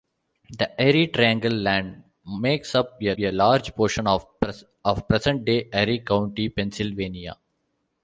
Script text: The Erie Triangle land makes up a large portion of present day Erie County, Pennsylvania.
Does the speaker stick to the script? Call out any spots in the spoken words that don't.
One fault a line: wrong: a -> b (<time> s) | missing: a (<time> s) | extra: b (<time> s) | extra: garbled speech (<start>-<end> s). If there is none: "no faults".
extra: a (3.2 s)